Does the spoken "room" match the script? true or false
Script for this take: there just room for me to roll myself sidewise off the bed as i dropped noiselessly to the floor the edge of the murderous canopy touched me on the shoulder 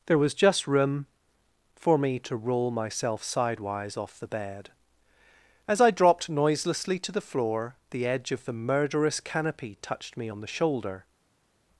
true